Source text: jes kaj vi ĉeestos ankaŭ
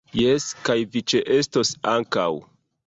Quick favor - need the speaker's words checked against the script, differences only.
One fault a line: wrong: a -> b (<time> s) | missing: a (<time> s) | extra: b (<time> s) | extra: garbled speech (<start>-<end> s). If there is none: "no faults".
no faults